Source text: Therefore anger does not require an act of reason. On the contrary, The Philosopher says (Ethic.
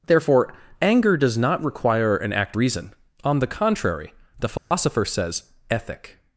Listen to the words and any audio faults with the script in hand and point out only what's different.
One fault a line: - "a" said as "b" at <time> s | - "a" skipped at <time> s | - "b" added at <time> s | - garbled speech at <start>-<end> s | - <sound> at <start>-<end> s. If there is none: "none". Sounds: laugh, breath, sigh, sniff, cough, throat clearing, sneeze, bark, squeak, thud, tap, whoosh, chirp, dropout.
- "of" skipped at 2.6 s
- dropout at 4.6-4.7 s